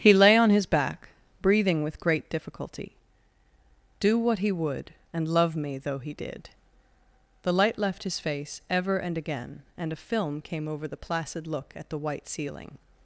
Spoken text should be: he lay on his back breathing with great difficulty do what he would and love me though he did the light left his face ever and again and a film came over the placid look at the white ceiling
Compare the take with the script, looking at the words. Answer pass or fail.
pass